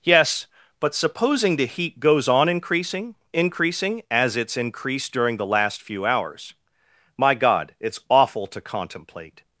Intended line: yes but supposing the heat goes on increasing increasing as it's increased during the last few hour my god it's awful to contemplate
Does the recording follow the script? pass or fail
fail